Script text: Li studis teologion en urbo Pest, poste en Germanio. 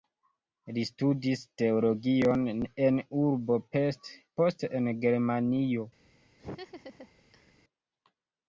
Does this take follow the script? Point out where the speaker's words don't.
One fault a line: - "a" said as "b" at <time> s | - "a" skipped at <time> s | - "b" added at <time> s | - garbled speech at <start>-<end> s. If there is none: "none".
none